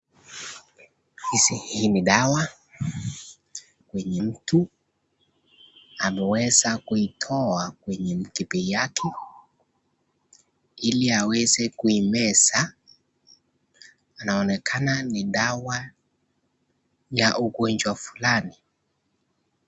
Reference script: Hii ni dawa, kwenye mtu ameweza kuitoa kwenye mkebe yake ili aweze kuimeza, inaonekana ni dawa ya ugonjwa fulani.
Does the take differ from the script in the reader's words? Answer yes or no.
no